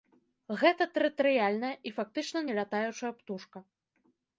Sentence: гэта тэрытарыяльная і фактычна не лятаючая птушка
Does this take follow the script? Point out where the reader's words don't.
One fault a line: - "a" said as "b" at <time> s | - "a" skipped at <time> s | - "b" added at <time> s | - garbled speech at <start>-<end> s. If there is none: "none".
none